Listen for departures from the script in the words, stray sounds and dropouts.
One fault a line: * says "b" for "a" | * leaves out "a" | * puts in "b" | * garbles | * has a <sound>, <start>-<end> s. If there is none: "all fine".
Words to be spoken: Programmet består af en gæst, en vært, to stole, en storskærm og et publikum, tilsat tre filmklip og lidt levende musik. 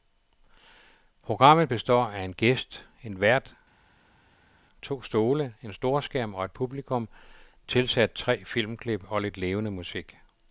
all fine